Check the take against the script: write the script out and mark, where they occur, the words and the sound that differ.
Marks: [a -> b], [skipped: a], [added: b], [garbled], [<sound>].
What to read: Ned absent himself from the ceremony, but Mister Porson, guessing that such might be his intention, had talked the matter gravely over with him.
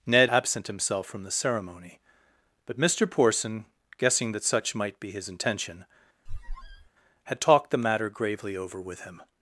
Ned absent himself from the ceremony, but Mister Porson, guessing that such might be his intention, [squeak] had talked the matter gravely over with him.